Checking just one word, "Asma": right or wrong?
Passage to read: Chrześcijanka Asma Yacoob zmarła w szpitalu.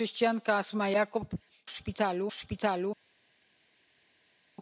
right